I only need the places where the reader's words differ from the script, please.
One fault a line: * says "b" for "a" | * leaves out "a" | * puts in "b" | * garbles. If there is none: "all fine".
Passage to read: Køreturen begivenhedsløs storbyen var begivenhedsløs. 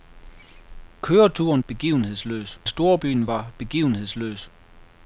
all fine